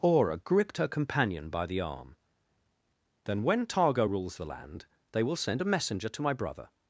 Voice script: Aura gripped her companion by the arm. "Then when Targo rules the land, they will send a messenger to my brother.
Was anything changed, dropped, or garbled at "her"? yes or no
no